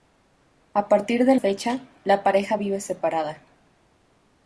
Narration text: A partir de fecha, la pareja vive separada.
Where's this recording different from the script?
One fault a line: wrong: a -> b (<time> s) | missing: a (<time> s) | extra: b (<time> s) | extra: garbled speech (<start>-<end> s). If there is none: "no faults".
no faults